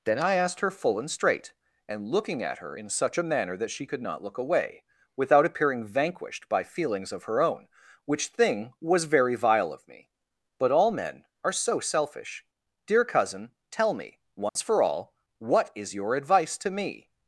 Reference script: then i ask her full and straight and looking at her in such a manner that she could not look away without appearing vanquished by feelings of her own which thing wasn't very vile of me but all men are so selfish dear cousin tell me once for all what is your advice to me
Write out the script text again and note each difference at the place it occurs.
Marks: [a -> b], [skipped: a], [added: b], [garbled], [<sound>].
then i [ask -> asked] her full and straight and looking at her in such a manner that she could not look away without appearing vanquished by feelings of her own which thing [wasn't -> was] very vile of me but all men are so selfish dear cousin tell me once [dropout] for all what is your advice to me